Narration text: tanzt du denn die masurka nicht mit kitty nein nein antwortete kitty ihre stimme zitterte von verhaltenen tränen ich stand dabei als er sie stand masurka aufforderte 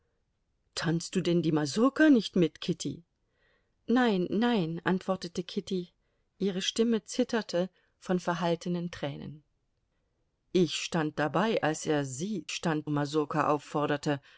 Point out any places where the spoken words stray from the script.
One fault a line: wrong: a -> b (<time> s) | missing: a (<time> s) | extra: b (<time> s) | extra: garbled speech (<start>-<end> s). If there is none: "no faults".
no faults